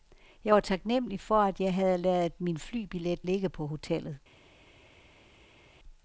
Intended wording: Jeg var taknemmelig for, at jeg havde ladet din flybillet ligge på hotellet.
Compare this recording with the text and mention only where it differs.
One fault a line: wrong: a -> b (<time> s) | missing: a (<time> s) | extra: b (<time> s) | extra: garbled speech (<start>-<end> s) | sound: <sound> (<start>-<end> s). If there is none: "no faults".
wrong: din -> min (2.4 s)